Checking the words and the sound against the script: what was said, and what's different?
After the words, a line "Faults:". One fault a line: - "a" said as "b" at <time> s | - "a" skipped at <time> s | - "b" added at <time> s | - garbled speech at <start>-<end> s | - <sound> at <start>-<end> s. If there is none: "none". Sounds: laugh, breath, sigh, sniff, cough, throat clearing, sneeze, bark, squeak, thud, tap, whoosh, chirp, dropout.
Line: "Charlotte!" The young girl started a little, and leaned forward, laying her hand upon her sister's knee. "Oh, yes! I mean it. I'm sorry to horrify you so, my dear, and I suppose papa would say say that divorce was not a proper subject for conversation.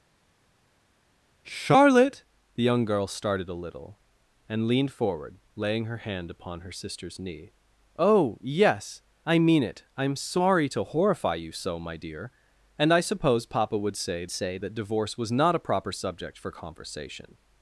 "Charlotte!" The young girl started a little, and leaned forward, laying her hand upon her sister's knee. "Oh, yes! I mean it. I'm sorry to horrify you so, my dear, and I suppose papa would say say that divorce was not a proper subject for conversation.
Faults:
none